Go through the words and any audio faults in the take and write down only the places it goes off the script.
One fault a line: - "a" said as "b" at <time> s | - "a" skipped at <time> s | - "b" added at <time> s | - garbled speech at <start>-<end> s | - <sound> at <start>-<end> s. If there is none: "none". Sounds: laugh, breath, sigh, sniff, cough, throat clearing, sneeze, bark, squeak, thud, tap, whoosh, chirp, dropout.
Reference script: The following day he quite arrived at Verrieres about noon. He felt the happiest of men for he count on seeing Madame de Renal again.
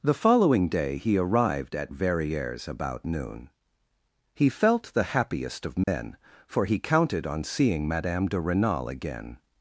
- "quite" skipped at 1.2 s
- dropout at 5.8-5.9 s
- "count" said as "counted" at 6.8 s